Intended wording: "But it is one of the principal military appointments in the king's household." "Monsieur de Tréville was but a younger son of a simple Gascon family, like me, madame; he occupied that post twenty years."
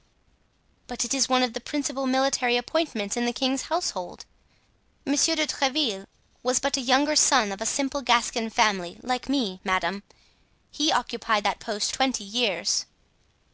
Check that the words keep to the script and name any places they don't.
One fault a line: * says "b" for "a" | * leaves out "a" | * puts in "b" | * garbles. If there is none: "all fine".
all fine